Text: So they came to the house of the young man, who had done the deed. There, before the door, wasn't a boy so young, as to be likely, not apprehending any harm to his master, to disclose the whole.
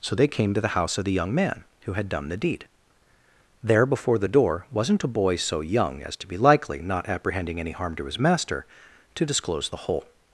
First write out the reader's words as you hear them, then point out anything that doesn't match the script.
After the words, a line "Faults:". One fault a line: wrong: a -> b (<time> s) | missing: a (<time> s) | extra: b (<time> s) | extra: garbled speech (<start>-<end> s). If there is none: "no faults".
So they came to the house of the young man, who had done the deed. There, before the door, wasn't a boy so young, as to be likely, not apprehending any harm to his master, to disclose the whole.
Faults:
no faults